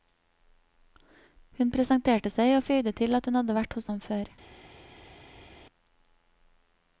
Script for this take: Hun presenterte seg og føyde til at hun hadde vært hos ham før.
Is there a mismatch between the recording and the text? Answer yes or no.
no